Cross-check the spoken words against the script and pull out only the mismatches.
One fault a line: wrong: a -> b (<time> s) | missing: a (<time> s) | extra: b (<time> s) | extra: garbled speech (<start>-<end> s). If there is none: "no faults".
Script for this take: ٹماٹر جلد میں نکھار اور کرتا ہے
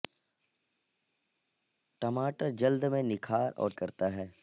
no faults